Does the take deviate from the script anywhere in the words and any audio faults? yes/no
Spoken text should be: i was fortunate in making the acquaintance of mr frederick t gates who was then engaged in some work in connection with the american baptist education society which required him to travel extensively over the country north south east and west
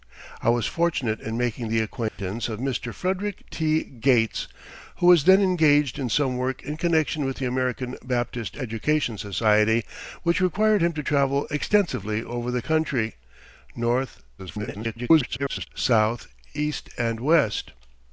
yes